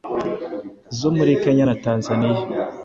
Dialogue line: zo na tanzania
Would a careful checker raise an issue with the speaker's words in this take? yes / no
yes